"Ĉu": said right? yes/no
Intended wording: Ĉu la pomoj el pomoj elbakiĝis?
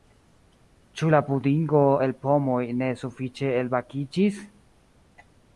yes